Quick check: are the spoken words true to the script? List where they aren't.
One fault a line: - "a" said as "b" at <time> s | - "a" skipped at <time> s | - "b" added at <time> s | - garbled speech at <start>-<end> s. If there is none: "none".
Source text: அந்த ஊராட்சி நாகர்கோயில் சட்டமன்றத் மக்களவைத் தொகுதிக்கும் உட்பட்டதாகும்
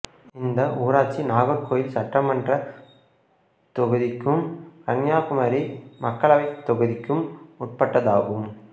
- "அந்த" said as "இந்த" at 0.3 s
- "தொகுதிக்கும் கன்னியாகுமரி" added at 3.8 s